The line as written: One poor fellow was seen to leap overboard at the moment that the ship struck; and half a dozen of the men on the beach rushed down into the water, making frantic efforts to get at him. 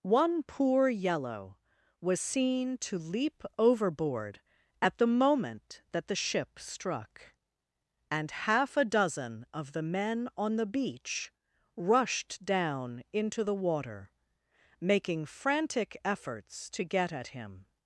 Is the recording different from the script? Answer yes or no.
yes